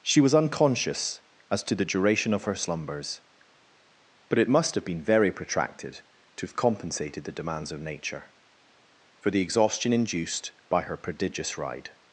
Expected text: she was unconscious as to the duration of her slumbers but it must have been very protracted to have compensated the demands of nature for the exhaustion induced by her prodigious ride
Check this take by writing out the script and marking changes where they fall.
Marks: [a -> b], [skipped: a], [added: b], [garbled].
she was unconscious as to the duration of her slumbers but it must have been very protracted to have compensated the demands of nature for the exhaustion induced by her prodigious ride